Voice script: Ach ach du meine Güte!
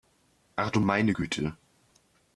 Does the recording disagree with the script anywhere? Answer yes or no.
yes